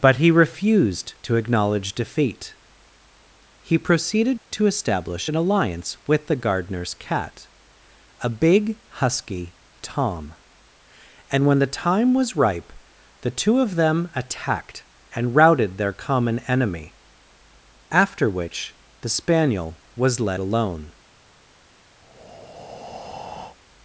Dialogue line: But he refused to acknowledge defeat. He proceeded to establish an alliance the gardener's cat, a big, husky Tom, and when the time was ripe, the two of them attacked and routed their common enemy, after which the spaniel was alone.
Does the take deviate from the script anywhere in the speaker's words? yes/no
yes